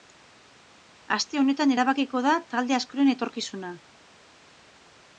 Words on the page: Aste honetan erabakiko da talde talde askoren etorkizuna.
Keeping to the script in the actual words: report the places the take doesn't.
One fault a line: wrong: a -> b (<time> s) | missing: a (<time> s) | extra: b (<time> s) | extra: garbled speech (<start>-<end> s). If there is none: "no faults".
missing: talde (2.8 s)